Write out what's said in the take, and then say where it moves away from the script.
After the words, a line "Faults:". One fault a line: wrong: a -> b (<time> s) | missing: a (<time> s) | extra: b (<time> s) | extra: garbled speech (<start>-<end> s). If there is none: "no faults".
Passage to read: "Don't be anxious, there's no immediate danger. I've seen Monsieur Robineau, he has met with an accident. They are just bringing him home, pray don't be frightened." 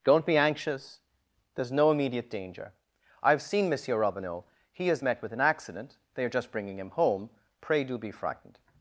"Don't be anxious, there's no immediate danger. I've seen Monsieur Robineau, he has met with an accident. They are just bringing him home, pray do be frightened."
Faults:
wrong: don't -> do (7.8 s)